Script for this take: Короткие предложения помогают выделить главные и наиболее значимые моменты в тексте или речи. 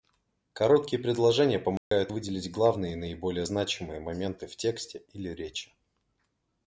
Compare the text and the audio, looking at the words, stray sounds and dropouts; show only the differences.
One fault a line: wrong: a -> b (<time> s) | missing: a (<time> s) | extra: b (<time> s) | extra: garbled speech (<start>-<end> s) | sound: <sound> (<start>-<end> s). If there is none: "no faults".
sound: dropout (1.8-1.9 s)